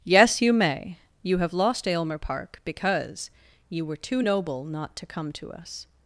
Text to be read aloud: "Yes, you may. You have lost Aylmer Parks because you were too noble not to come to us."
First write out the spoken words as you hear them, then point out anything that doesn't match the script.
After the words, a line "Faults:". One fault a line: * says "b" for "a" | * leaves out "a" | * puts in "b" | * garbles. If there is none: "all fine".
"Yes, you may. You have lost Aylmer Park because you were too noble not to come to us."
Faults:
* says "Park" for "Parks"